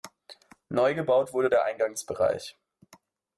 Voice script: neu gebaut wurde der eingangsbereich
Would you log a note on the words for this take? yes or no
no